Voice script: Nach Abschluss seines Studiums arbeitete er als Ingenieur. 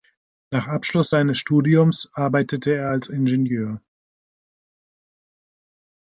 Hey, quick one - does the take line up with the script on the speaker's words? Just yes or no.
yes